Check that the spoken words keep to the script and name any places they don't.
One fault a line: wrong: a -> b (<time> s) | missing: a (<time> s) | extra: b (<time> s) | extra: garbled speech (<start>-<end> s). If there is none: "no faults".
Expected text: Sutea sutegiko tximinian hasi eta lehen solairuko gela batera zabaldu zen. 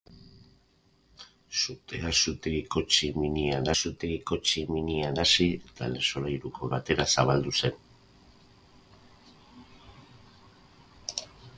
extra: sutegiko tximinian (3.8 s)
missing: gela (6.7 s)